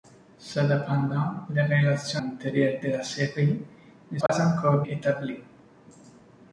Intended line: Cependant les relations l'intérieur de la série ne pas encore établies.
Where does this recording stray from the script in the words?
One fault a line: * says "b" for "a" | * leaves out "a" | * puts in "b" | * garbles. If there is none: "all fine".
all fine